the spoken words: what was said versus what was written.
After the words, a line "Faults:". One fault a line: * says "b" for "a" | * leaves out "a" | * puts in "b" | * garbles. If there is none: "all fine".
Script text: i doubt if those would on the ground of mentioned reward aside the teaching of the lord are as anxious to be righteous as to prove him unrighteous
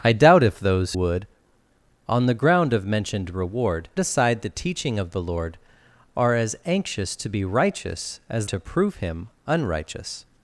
i doubt if those would on the ground of mentioned reward aside the teaching of the lord are as anxious to be righteous as to prove him unrighteous
Faults:
all fine